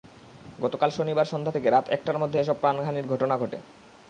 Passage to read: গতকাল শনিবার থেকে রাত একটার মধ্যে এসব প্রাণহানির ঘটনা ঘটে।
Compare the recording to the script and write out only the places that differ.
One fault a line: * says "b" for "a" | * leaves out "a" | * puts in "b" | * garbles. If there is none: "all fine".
* puts in "সন্ধ্যা"